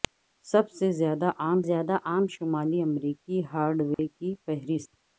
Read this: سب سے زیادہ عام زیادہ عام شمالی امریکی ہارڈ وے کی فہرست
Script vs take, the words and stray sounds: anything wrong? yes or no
yes